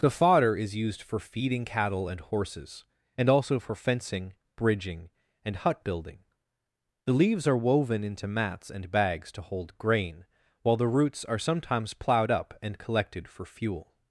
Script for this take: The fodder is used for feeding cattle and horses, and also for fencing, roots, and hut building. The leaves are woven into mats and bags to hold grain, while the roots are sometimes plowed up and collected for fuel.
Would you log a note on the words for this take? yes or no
yes